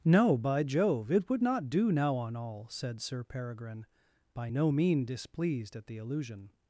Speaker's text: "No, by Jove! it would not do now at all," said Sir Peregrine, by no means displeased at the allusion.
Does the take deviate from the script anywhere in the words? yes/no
yes